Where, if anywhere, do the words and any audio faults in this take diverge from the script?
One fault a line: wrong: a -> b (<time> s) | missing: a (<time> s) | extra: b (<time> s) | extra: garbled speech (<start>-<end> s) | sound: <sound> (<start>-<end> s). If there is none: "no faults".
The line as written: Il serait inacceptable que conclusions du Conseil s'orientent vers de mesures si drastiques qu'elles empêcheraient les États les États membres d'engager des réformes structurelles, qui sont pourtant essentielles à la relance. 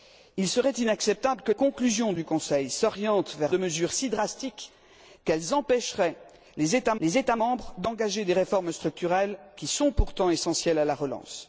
no faults